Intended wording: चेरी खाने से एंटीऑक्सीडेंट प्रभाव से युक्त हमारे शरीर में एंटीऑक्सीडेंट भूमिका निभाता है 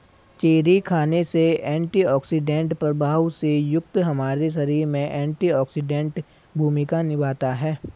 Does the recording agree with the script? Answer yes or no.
yes